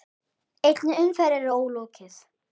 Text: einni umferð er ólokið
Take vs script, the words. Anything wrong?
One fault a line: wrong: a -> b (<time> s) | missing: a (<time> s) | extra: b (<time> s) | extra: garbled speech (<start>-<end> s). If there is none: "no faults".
no faults